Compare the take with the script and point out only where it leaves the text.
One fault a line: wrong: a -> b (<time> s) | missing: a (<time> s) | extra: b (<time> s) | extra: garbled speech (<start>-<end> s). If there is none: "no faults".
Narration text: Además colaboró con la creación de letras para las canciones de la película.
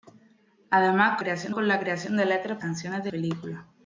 wrong: colaboró -> creación (1.2 s)
missing: para las (2.6 s)
missing: la (3.1 s)